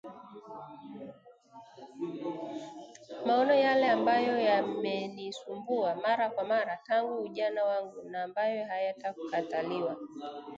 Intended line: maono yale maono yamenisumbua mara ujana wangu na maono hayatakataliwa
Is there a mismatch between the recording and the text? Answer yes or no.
yes